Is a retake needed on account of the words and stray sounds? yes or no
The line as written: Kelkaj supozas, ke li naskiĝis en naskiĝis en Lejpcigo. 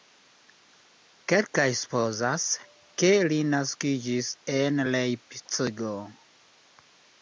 yes